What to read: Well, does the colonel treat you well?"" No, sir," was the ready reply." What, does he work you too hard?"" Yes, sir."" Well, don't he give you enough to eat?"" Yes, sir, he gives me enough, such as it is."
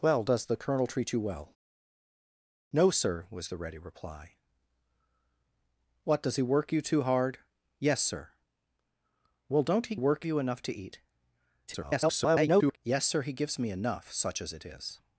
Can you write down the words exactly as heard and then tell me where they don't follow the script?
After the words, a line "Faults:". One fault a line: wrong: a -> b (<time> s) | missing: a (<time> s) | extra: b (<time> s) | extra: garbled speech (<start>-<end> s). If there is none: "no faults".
Well, does the colonel treat you well?"" No, sir," was the ready reply." What, does he work you too hard?"" Yes, sir."" Well, don't he work you enough to eat?"" [garbled] Yes, sir, he gives me enough, such as it is."
Faults:
wrong: give -> work (9.9 s)
extra: garbled speech (11.7-12.8 s)